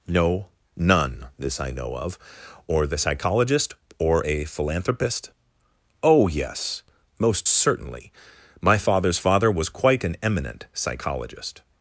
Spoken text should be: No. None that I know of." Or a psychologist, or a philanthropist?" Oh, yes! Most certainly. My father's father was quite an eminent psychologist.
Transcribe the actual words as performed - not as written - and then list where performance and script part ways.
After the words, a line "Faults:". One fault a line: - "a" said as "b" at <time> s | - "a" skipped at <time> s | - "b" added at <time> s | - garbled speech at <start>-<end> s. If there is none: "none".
No. None this I know of." Or the psychologist, or a philanthropist?" Oh, yes! Most certainly. My father's father was quite an eminent psychologist.
Faults:
- "that" said as "this" at 1.4 s
- "a" said as "the" at 2.9 s